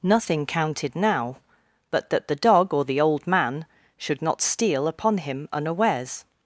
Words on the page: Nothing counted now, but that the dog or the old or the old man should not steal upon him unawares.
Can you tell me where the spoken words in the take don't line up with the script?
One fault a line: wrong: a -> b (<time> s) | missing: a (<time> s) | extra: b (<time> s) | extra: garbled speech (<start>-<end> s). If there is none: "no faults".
missing: or the old (3.3 s)